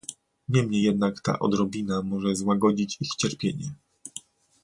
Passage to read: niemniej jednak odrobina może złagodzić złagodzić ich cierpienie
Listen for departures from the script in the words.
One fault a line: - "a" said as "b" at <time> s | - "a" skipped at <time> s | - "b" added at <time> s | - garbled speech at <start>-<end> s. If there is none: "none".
- "ta" added at 1.2 s
- "złagodzić" skipped at 3.0 s